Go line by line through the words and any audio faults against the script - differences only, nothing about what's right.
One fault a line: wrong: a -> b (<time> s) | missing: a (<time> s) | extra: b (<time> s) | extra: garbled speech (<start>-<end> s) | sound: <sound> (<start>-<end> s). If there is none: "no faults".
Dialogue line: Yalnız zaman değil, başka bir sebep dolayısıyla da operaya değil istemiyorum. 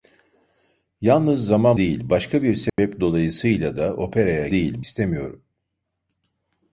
sound: dropout (2.7-2.8 s)